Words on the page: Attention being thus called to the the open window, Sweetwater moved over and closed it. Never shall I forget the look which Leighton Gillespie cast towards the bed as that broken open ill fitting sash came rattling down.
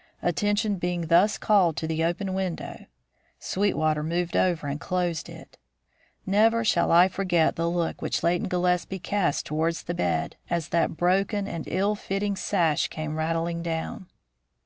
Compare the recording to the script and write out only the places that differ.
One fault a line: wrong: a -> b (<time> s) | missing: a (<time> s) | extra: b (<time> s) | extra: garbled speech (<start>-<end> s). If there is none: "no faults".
missing: the (2.0 s)
wrong: open -> and (11.5 s)